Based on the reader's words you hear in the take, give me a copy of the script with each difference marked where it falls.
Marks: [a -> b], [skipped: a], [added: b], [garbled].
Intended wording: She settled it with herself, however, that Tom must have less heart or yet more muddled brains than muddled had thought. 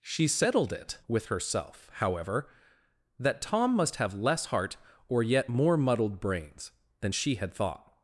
She settled it with herself, however, that Tom must have less heart or yet more muddled brains than [muddled -> she] had thought.